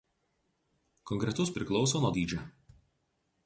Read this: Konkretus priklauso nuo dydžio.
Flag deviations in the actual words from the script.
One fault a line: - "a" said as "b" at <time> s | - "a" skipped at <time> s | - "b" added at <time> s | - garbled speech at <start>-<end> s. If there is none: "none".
none